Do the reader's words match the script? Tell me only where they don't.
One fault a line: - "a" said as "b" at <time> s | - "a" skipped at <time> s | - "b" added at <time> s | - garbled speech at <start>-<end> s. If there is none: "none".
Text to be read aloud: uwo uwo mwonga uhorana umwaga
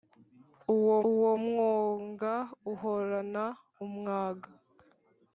none